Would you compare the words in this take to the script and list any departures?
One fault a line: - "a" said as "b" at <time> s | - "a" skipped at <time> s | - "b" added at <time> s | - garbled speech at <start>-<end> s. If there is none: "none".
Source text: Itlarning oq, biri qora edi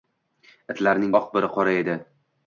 none